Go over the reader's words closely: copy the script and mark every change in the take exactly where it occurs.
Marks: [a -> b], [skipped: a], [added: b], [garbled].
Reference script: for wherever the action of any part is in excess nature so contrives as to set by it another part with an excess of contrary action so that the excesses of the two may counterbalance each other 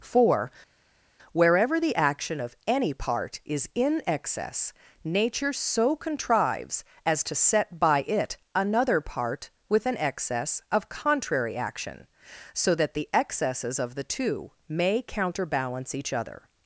for wherever the action of any part is in excess nature so contrives as to set by it another part with an excess of contrary action so that the excesses of the two may counterbalance each other